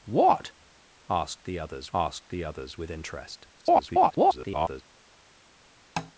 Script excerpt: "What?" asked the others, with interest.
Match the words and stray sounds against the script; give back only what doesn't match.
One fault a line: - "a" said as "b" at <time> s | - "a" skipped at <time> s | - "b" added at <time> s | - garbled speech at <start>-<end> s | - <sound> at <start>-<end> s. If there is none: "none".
- "asked the others" added at 2.0 s
- garbled speech at 3.5-4.8 s
- tap at 6.0-6.1 s